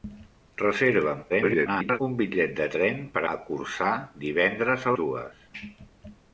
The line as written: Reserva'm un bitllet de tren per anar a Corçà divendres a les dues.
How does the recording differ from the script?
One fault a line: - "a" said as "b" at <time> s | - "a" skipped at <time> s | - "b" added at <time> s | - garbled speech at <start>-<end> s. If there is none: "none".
- garbled speech at 1.3-2.0 s
- "anar" skipped at 3.3 s
- "les" skipped at 5.0 s